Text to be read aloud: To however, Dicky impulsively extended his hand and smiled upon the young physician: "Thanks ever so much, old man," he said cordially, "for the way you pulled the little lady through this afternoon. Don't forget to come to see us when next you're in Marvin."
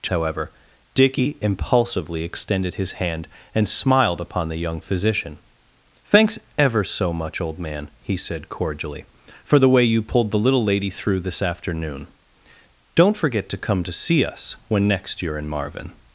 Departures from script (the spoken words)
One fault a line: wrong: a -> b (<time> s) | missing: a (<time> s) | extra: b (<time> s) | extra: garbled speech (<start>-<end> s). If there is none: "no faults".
no faults